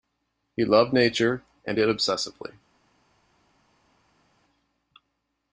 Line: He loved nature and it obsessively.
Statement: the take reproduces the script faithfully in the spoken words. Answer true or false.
true